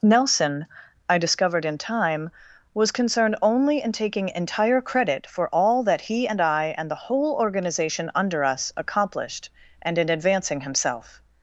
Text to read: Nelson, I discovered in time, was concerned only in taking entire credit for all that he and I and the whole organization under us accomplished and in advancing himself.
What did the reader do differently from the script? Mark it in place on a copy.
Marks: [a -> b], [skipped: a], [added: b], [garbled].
Nelson, I discovered in time, was concerned only in taking entire credit for all that he and I and the whole organization under us accomplished and in advancing himself.